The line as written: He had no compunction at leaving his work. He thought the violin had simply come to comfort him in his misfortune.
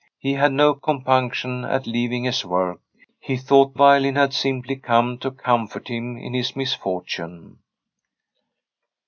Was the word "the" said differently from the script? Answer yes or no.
yes